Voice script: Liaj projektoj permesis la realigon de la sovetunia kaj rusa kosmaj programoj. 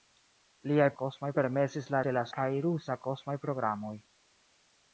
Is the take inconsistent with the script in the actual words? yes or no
yes